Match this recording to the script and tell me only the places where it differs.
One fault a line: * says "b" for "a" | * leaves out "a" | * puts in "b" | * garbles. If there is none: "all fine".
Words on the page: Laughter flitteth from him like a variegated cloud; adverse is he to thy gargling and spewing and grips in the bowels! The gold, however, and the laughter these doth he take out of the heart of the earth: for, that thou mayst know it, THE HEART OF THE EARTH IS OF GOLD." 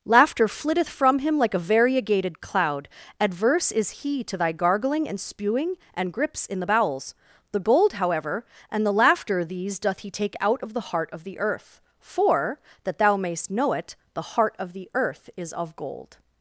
all fine